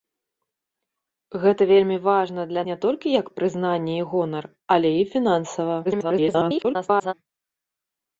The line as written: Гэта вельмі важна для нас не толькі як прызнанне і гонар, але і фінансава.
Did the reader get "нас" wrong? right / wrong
wrong